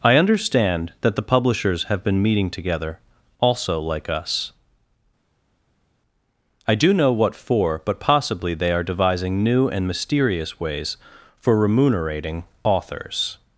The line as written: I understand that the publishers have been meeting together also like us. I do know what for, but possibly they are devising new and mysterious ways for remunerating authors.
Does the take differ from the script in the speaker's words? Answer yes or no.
no